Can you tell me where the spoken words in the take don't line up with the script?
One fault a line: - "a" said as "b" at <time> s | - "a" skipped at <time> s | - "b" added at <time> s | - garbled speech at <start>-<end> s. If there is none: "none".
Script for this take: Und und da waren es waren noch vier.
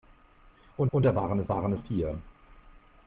none